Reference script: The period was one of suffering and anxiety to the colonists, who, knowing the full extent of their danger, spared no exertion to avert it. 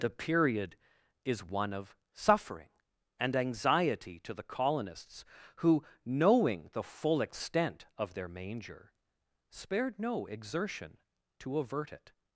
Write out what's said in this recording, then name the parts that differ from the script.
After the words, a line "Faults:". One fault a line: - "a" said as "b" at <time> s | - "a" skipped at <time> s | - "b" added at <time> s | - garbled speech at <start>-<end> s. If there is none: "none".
The period is one of suffering and anxiety to the colonists, who, knowing the full extent of their manger, spared no exertion to avert it.
Faults:
- "was" said as "is" at 1.2 s
- "danger" said as "manger" at 8.3 s